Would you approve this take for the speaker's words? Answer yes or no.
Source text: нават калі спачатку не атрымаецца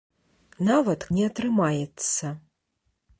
no